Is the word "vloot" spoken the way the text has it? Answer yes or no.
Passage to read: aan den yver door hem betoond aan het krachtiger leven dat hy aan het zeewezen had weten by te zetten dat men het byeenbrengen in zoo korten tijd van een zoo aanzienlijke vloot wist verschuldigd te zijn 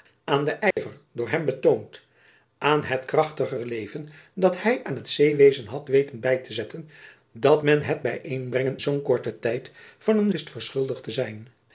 no